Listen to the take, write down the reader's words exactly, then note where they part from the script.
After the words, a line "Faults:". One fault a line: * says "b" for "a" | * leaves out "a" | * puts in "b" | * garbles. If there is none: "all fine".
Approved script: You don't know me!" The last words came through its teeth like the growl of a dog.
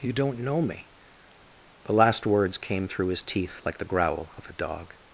You don't know me!" The last words came through his teeth like the growl of a dog.
Faults:
* says "his" for "its"